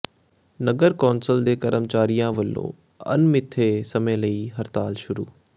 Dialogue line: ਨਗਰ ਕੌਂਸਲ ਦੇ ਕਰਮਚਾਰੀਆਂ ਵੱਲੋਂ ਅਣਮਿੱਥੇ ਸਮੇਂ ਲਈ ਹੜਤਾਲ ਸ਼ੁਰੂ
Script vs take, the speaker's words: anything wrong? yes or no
no